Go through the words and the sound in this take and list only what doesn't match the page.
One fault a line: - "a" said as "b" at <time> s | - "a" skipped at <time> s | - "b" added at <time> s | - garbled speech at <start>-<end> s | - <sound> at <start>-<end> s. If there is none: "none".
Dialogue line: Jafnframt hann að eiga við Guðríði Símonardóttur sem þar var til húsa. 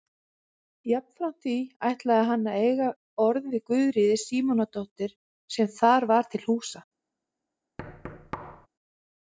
- "því ætlaði" added at 1.4 s
- "orð" added at 3.2 s
- thud at 7.8-8.7 s